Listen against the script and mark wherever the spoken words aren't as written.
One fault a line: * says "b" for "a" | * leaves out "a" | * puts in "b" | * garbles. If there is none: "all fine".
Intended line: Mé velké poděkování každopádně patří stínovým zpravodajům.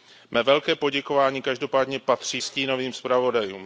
all fine